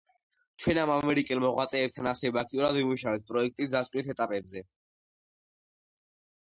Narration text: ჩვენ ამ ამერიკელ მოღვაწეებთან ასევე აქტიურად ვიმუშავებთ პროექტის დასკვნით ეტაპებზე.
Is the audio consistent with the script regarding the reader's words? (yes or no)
yes